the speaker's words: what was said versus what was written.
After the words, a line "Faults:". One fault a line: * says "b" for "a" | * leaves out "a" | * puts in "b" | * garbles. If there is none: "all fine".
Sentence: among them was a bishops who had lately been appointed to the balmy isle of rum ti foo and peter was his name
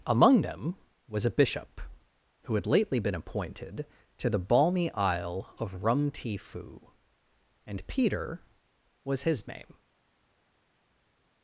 among them was a bishop who had lately been appointed to the balmy isle of rum ti foo and peter was his name
Faults:
* says "bishop" for "bishops"